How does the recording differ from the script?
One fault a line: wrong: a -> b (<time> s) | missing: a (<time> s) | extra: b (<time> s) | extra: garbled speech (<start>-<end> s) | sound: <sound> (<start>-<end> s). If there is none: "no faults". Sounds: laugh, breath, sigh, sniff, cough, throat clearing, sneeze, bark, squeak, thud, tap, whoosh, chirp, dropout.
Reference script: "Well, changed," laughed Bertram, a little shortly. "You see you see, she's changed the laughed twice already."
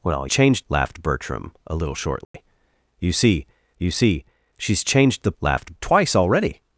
sound: dropout (2.2-2.3 s)